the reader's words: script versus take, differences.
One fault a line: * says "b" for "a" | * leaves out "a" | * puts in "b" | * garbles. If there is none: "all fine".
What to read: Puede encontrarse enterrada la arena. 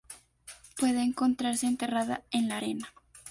* puts in "en"